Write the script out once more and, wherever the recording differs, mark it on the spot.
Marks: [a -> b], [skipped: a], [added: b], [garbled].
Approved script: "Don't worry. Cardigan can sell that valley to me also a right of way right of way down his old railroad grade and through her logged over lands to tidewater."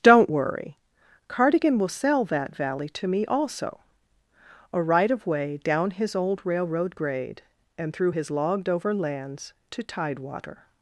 "Don't worry. Cardigan [can -> will] sell that valley to me also a right of way [skipped: right of way] down his old railroad grade and through [her -> his] logged over lands to tidewater."